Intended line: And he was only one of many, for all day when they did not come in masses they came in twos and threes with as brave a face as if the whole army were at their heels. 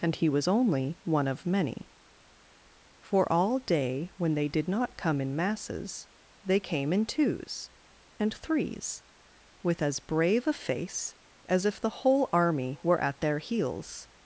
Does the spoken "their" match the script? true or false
true